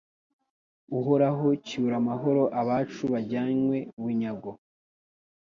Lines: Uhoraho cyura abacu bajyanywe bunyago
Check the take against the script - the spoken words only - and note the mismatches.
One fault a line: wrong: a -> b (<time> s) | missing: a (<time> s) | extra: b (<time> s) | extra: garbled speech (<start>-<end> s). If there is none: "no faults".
extra: amahoro (2.0 s)